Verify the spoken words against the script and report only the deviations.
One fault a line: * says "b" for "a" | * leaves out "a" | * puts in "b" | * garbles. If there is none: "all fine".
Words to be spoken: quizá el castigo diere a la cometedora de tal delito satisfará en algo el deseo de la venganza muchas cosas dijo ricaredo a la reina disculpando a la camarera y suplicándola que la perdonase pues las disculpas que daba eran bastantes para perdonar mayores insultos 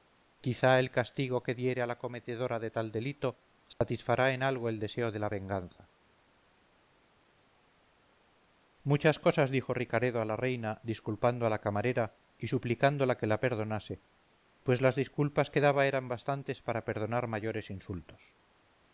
* puts in "que"